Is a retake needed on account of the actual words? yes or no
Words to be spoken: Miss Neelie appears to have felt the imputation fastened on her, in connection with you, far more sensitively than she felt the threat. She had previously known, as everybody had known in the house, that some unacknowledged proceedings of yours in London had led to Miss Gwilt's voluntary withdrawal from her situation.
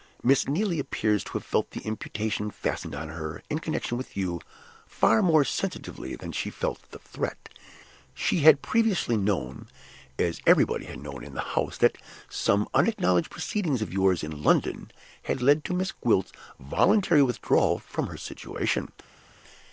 no